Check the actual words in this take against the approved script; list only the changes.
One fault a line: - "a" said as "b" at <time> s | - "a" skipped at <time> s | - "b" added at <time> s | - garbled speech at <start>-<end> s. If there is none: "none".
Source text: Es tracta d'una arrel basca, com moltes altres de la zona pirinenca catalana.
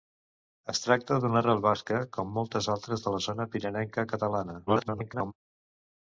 - garbled speech at 4.7-5.3 s